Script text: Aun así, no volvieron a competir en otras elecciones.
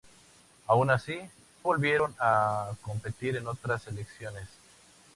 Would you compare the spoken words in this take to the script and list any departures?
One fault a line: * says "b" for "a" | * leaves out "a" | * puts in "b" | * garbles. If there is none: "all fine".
* leaves out "no"